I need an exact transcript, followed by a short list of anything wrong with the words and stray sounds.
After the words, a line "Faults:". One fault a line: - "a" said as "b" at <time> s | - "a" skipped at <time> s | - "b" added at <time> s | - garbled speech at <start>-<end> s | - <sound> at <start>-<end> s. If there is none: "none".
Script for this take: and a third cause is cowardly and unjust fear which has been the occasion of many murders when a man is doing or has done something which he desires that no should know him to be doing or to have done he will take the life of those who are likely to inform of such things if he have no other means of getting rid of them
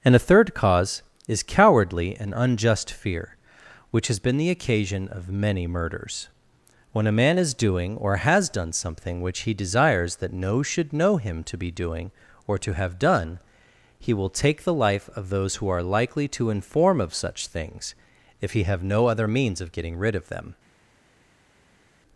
and a third cause is cowardly and unjust fear which has been the occasion of many murders when a man is doing or has done something which he desires that no should know him to be doing or to have done he will take the life of those who are likely to inform of such things if he have no other means of getting rid of them
Faults:
none